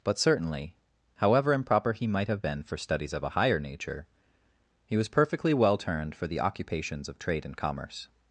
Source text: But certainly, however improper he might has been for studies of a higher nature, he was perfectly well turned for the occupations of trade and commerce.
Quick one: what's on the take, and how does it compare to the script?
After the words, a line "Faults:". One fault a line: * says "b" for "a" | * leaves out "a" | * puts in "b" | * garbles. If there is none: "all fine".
But certainly, however improper he might have been for studies of a higher nature, he was perfectly well turned for the occupations of trade and commerce.
Faults:
* says "have" for "has"